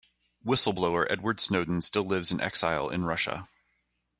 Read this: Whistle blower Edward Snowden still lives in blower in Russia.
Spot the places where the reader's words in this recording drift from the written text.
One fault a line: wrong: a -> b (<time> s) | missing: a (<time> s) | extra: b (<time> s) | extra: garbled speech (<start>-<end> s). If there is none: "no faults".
wrong: blower -> exile (2.4 s)